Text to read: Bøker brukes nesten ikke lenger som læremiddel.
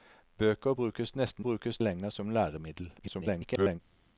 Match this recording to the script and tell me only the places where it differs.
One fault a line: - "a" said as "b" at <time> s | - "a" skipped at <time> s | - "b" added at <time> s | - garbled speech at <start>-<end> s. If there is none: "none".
- "ikke" said as "brukes" at 1.4 s
- garbled speech at 3.0-3.8 s